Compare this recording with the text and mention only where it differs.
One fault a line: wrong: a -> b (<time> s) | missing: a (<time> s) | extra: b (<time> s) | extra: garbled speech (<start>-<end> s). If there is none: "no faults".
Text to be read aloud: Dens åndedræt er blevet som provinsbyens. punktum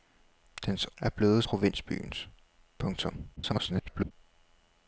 missing: åndedræt (0.9 s)
missing: som (1.4 s)
extra: garbled speech (3.4-4.1 s)